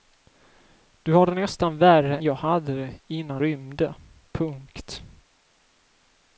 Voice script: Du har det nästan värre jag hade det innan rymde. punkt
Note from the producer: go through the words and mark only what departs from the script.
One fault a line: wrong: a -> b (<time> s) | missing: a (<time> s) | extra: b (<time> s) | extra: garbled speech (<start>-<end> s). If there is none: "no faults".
no faults